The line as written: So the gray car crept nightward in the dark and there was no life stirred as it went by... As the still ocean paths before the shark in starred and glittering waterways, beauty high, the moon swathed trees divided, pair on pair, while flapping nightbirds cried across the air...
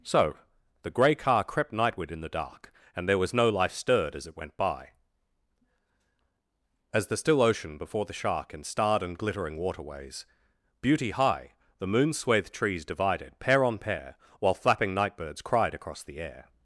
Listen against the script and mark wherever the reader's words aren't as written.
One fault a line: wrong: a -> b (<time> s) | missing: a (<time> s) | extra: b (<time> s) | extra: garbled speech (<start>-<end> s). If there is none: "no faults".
missing: paths (7.8 s)